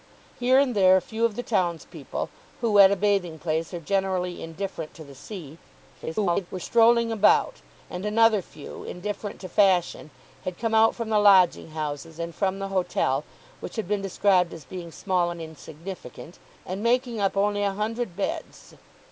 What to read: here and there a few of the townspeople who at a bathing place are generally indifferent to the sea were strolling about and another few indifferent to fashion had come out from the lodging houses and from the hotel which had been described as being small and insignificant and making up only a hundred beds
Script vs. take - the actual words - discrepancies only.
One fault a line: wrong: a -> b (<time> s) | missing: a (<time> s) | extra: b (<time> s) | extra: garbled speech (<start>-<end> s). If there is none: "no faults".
extra: garbled speech (5.9-6.5 s)